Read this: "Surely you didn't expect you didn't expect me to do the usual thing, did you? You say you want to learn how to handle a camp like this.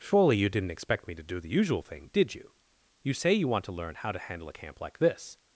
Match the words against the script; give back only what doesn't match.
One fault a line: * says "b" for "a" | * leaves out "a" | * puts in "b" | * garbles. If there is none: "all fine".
* leaves out "you didn't expect"